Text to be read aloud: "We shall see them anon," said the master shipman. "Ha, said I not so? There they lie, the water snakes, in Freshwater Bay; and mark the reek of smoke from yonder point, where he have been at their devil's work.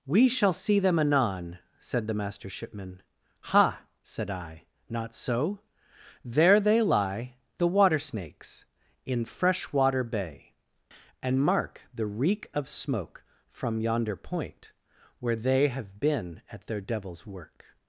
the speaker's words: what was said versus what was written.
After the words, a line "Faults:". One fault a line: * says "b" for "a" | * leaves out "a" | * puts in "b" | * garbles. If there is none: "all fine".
"We shall see them anon," said the master shipman. "Ha, said I not so? There they lie, the water snakes, in Freshwater Bay; and mark the reek of smoke from yonder point, where they have been at their devil's work.
Faults:
* says "they" for "he"